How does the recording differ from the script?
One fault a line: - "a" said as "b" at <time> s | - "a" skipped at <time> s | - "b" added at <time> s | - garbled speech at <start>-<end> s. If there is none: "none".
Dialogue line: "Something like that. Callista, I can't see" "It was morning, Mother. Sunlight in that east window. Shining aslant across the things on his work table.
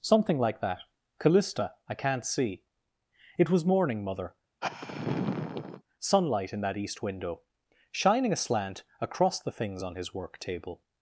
none